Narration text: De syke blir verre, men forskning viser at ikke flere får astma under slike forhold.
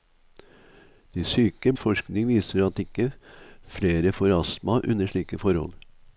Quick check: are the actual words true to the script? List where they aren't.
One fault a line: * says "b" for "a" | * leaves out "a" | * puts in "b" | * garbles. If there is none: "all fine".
* leaves out "blir verre men"